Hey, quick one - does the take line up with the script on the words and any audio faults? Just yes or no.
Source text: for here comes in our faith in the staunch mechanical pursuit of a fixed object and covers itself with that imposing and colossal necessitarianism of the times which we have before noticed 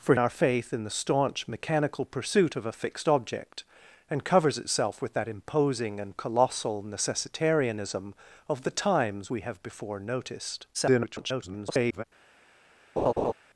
no